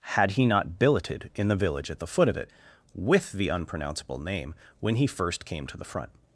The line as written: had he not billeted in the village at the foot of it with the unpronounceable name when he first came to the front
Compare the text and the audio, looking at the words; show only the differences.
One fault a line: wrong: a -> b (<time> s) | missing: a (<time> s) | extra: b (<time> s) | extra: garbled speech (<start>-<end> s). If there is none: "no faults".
no faults